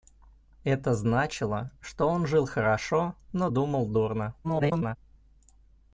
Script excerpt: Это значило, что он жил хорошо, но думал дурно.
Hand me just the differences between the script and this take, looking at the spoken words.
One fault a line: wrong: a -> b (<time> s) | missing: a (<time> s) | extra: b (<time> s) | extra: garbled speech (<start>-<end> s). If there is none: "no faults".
extra: garbled speech (4.4-5.0 s)